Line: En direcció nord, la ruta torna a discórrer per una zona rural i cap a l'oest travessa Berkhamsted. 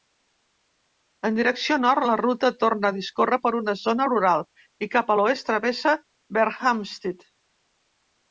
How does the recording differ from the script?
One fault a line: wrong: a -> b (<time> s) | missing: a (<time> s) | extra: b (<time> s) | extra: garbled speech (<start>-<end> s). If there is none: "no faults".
no faults